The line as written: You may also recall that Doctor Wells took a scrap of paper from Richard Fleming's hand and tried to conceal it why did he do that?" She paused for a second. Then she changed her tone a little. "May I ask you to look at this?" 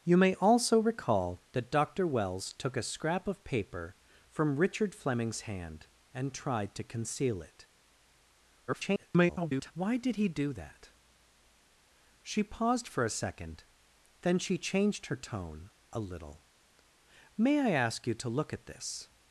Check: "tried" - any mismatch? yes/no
no